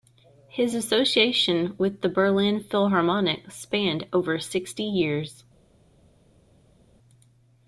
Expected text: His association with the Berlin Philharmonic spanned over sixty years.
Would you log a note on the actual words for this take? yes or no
no